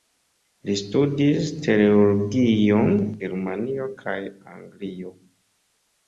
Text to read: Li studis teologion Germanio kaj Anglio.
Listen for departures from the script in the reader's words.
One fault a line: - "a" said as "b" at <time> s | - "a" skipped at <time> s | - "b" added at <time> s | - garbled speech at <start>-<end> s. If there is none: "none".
none